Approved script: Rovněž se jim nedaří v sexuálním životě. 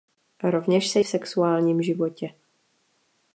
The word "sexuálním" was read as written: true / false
true